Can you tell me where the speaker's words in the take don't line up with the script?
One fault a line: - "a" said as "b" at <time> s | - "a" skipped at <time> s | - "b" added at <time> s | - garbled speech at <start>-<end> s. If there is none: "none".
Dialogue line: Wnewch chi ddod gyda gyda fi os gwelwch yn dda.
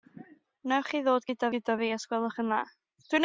none